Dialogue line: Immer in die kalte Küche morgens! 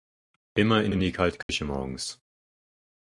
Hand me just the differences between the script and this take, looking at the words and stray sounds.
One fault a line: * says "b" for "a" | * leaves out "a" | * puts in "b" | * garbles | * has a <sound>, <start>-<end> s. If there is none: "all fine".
* puts in "in"
* has a dropout, 1.4-1.5 s